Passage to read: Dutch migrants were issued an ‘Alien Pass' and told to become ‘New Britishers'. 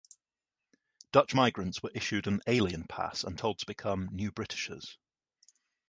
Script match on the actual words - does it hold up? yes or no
yes